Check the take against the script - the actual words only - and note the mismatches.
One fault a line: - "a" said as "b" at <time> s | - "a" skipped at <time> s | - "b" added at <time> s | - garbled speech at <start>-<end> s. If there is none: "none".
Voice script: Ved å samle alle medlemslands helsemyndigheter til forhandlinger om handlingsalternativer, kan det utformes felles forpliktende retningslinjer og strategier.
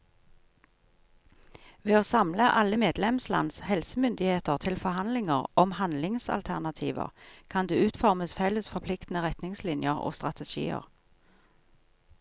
none